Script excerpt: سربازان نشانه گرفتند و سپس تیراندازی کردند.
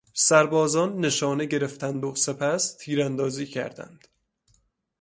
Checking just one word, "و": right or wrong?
right